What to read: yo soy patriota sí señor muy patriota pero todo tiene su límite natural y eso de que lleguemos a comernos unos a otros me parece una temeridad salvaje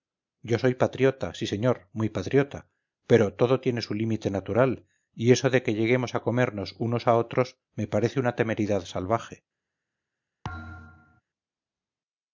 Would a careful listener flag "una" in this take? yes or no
no